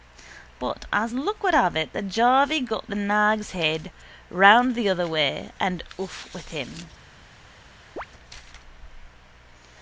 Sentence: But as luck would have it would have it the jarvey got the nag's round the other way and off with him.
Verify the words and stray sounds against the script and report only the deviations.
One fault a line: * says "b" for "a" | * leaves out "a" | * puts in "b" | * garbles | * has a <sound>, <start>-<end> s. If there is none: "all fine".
* leaves out "would have it"
* puts in "head"
* has a chirp, 8.0-8.1 s